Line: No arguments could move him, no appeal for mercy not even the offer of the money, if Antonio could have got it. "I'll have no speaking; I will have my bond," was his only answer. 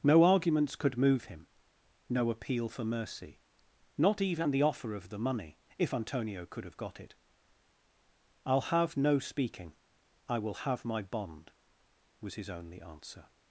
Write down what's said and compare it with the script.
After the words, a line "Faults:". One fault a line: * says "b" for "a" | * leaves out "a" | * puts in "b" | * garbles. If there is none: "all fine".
No arguments could move him, no appeal for mercy not even the offer of the money, if Antonio could have got it. "I'll have no speaking; I will have my bond," was his only answer.
Faults:
all fine